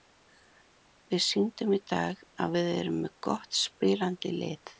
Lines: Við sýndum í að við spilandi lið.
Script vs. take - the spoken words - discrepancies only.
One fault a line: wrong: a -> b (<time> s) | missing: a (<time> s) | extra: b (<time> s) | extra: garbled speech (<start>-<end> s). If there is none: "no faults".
extra: dag (1.9 s)
extra: erum með gott (2.8 s)